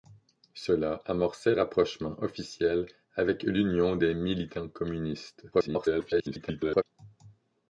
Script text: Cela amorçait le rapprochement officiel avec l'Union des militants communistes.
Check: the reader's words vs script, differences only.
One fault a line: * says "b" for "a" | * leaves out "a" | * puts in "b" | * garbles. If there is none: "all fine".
* leaves out "le"
* garbles